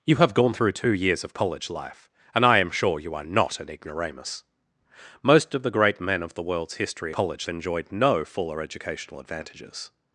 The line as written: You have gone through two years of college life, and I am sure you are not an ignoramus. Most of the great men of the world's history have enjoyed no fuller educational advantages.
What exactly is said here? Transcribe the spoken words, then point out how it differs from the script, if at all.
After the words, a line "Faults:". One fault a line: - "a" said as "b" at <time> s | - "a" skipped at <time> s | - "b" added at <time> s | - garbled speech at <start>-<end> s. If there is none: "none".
You have gone through two years of college life, and I am sure you are not an ignoramus. Most of the great men of the world's history college enjoyed no fuller educational advantages.
Faults:
- "have" said as "college" at 7.1 s